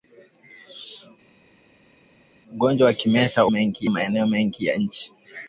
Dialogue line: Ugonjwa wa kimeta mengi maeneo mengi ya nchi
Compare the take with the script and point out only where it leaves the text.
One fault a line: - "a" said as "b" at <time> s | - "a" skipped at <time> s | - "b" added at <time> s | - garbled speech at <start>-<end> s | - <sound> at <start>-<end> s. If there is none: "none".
none